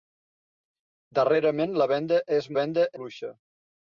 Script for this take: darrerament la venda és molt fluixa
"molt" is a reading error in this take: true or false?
true